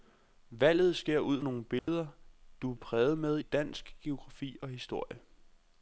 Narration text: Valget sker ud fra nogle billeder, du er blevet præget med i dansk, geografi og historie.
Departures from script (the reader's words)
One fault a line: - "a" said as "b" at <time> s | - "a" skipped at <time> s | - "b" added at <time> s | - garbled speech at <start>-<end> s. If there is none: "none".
- "fra" skipped at 1.4 s
- "blevet" skipped at 2.8 s
- "i" skipped at 3.4 s